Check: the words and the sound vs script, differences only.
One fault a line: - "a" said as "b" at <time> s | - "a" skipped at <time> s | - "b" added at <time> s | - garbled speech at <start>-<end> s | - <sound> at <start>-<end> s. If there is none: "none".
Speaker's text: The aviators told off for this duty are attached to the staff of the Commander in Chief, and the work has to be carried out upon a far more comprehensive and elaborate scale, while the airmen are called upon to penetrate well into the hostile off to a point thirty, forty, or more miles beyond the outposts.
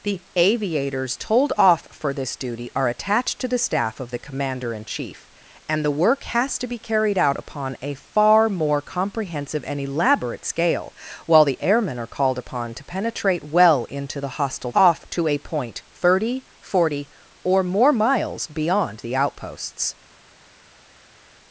none